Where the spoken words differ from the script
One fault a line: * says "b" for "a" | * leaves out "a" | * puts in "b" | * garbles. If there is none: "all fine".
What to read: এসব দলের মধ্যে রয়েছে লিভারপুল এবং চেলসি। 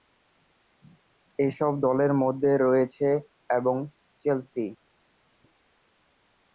* leaves out "লিভারপুল"